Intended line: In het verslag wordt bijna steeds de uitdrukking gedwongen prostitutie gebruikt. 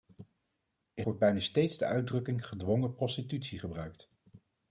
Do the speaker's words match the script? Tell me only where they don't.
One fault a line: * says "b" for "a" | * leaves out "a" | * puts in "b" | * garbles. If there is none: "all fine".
* leaves out "het verslag"